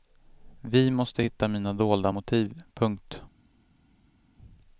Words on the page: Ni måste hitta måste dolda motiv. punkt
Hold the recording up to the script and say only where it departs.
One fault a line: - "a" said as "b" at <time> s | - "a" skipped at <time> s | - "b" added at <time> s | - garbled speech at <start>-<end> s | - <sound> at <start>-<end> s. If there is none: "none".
- "Ni" said as "Vi" at 0.6 s
- "måste" said as "mina" at 1.5 s